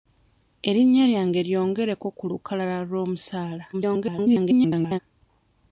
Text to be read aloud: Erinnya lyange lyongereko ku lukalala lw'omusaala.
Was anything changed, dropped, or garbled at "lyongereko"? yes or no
no